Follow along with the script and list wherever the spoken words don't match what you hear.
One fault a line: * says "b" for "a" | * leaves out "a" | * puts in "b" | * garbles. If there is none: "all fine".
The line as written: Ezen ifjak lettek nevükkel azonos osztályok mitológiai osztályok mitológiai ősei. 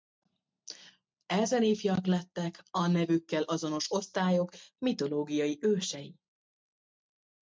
* puts in "a"
* leaves out "osztályok mitológiai"